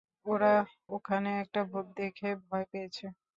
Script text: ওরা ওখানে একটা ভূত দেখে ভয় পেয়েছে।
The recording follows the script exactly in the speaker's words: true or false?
true